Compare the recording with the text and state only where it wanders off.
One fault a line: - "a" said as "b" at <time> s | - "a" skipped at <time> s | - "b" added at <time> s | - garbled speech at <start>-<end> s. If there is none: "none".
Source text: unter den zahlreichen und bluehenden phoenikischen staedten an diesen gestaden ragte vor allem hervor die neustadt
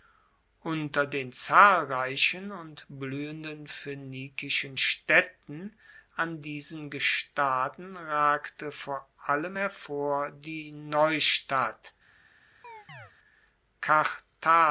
none